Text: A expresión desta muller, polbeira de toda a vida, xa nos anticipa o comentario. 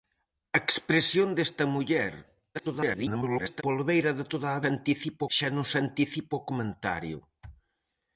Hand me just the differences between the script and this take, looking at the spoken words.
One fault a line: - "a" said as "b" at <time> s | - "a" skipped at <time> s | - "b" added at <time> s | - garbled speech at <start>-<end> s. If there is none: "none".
- garbled speech at 2.5-3.6 s
- "vida" said as "anticipa" at 4.7 s